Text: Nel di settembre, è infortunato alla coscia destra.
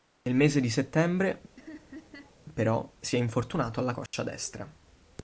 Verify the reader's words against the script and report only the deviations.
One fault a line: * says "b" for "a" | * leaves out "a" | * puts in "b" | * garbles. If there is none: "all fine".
* puts in "mese"
* puts in "però si"